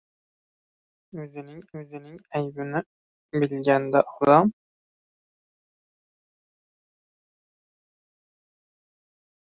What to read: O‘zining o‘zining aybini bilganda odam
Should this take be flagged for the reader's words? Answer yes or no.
no